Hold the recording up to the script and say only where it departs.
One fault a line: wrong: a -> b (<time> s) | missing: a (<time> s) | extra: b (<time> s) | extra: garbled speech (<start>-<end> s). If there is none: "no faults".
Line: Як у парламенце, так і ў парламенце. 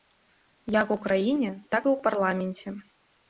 wrong: парламенце -> краіне (1.0 s)